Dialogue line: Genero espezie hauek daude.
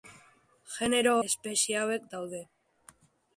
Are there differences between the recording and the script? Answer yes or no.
no